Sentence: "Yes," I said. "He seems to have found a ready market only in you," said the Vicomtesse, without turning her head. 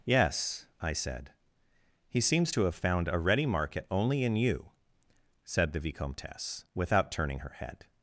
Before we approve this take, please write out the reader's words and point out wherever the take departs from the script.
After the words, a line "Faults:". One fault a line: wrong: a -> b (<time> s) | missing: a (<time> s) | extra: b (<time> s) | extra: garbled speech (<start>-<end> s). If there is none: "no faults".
"Yes," I said. "He seems to have found a ready market only in you," said the Vicomtesse, without turning her head.
Faults:
no faults